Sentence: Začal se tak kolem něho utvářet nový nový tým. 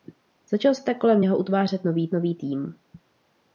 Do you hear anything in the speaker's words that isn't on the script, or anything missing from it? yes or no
no